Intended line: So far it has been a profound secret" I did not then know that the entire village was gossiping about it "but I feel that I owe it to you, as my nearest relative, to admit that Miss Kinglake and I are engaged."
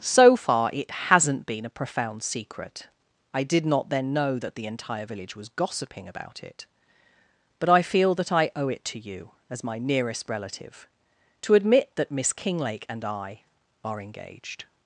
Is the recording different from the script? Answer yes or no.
yes